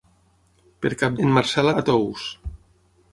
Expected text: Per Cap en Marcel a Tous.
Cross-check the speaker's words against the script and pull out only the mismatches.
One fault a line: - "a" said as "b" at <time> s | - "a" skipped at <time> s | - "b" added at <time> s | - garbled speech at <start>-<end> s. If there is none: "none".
none